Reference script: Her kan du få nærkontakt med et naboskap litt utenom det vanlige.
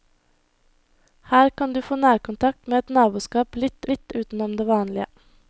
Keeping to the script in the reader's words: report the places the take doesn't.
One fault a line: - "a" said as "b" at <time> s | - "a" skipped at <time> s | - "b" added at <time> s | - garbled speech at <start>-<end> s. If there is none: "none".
- "litt" added at 3.9 s